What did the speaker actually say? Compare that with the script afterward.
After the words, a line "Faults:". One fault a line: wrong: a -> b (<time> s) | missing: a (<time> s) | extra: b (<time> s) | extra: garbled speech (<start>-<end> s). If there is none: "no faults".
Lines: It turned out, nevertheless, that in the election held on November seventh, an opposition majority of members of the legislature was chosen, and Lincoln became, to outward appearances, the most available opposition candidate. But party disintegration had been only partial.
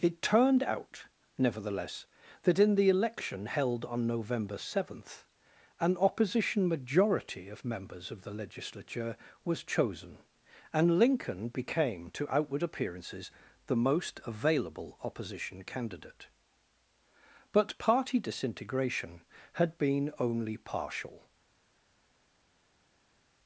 It turned out, nevertheless, that in the election held on November seventh, an opposition majority of members of the legislature was chosen, and Lincoln became, to outward appearances, the most available opposition candidate. But party disintegration had been only partial.
Faults:
no faults